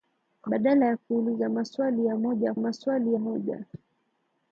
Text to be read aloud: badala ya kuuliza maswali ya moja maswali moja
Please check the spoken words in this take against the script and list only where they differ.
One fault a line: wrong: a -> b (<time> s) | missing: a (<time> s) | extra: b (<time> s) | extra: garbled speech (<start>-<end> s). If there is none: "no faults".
no faults